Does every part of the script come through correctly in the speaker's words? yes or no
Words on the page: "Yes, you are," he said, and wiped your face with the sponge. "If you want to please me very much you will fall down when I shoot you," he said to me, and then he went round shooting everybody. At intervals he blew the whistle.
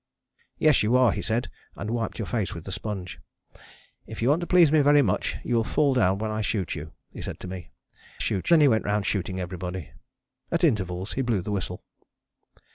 no